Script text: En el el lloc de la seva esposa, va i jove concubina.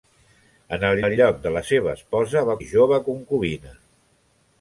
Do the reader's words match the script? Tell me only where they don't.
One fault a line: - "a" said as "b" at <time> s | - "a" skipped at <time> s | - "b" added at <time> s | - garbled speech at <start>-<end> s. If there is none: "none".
none